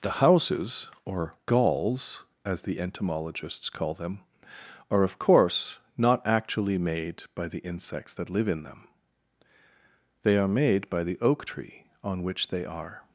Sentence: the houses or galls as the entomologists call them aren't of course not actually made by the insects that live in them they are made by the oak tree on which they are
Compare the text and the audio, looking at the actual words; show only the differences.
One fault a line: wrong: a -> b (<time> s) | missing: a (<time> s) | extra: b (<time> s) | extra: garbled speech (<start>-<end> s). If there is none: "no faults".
wrong: aren't -> are (4.9 s)